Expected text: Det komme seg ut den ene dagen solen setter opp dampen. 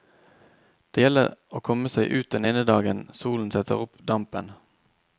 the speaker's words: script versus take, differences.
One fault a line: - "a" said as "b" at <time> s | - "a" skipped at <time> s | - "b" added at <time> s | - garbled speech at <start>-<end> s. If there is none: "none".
- "gjelder å" added at 1.0 s